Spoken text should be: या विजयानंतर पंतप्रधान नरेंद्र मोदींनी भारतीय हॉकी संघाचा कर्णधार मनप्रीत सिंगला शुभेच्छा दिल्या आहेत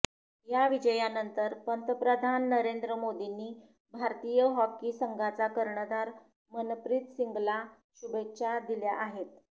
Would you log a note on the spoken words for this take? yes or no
no